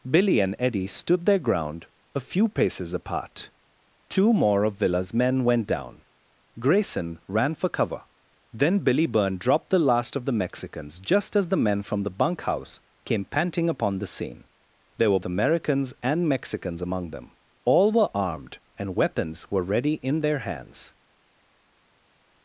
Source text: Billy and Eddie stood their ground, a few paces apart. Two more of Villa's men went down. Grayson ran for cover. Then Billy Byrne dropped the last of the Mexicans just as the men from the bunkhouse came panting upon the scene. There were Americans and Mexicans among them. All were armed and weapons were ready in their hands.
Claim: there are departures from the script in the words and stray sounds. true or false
false